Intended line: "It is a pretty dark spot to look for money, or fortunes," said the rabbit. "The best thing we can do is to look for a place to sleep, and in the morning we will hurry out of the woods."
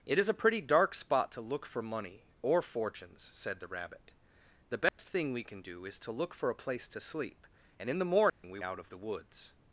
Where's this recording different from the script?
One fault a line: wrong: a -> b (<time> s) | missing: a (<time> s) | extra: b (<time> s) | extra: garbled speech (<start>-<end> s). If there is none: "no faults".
missing: will hurry (8.6 s)